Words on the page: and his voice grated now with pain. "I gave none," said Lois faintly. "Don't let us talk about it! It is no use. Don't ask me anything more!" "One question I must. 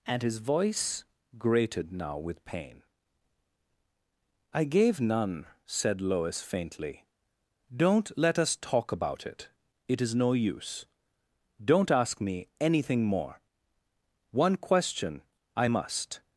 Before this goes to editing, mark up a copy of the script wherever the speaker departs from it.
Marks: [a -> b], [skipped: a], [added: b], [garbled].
and his voice grated now with pain. "I gave none," said Lois faintly. "Don't let us talk about it! It is no use. Don't ask me anything more!" "One question I must.